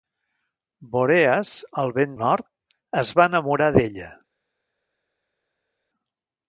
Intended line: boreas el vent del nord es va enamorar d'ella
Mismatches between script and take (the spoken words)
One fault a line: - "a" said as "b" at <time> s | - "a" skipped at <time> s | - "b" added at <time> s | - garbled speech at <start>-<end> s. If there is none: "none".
- "del" skipped at 2.2 s